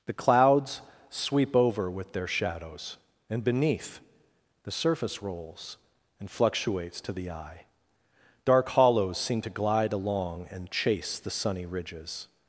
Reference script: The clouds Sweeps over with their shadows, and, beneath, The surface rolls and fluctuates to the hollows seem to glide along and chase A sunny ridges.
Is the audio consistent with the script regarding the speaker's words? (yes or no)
no